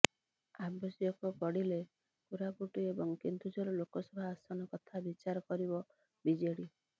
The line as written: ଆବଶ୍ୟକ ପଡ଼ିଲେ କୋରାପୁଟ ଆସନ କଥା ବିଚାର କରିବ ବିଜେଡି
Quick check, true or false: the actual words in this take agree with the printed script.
false